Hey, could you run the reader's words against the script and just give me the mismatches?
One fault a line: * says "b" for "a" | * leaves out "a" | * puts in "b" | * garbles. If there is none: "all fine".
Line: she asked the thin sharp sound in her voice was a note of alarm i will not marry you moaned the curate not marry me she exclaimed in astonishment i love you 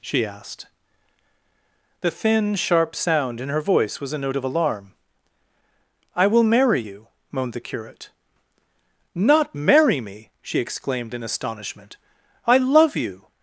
* leaves out "not"